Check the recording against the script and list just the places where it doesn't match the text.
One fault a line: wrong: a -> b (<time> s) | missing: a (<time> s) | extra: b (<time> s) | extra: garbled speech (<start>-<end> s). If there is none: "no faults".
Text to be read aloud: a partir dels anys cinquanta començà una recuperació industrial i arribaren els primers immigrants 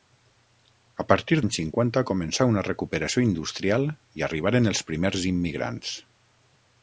missing: dels (1.4 s)